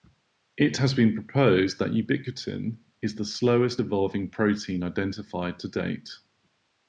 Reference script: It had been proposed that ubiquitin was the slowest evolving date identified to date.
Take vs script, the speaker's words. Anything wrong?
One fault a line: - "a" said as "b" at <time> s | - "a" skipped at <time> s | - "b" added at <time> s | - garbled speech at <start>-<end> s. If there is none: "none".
- "had" said as "has" at 0.8 s
- "was" said as "is" at 3.0 s
- "date" said as "protein" at 4.3 s